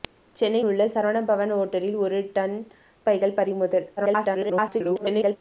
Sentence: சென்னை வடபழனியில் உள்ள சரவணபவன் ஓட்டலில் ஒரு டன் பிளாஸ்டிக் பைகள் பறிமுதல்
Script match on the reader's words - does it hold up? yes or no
no